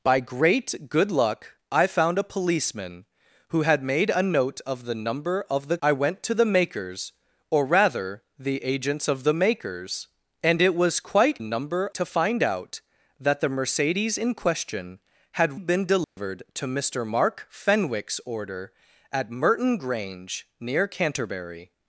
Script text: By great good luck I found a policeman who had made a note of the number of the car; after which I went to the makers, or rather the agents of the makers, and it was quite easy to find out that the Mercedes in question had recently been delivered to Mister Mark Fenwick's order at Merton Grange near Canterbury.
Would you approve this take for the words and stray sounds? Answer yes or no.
no